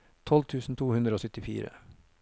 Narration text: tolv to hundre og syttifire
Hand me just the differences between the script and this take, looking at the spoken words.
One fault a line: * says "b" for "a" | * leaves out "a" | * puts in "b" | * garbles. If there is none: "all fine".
* puts in "tusen"